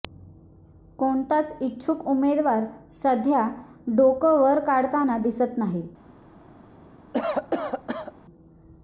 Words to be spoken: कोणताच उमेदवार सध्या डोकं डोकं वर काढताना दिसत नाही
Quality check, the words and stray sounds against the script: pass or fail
fail